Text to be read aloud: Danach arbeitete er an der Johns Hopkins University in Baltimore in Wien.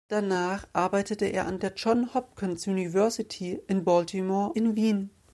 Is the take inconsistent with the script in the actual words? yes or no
no